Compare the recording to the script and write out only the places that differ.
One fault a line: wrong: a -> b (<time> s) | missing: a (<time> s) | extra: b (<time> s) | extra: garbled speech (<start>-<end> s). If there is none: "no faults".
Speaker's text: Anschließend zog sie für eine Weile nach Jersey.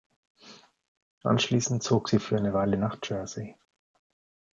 no faults